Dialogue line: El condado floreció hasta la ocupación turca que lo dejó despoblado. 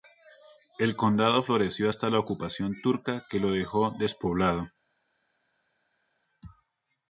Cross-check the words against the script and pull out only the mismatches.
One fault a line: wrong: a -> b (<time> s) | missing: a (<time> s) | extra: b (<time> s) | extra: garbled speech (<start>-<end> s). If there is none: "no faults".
no faults